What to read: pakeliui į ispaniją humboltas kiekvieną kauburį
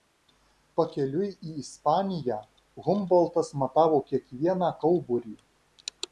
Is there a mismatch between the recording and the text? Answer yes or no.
yes